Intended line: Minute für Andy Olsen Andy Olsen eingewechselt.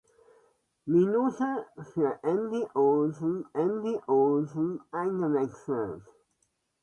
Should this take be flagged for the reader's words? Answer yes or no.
no